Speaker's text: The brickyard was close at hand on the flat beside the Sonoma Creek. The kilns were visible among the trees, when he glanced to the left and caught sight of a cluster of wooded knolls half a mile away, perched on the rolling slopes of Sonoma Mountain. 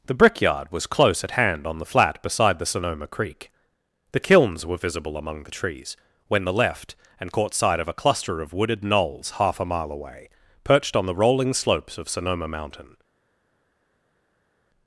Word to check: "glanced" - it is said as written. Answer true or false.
false